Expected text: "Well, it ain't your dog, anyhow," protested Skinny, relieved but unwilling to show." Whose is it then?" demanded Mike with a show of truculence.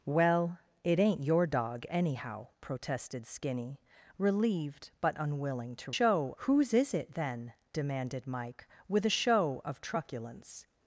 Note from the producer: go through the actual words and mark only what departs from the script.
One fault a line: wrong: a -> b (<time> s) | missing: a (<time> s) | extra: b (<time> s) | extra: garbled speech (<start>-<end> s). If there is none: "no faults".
no faults